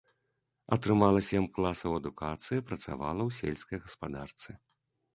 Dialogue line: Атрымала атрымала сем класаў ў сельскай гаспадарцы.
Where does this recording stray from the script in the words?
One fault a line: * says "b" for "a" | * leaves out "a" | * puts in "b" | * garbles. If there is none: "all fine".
* leaves out "атрымала"
* puts in "адукацыі працавала"